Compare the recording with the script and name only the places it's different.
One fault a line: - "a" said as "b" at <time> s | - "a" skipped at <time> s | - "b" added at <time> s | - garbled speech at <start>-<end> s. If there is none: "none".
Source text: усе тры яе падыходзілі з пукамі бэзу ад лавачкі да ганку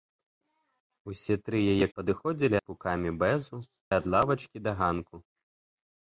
none